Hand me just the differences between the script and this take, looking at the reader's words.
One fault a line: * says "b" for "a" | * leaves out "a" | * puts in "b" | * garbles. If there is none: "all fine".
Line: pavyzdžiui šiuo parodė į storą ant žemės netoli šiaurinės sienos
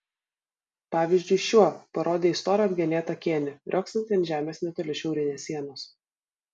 * puts in "apgenėtą kėnį riogsantį"